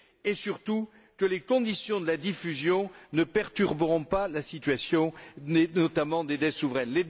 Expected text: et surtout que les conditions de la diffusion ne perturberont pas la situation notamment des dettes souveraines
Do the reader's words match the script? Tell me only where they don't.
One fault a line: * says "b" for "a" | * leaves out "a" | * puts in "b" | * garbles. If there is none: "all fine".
all fine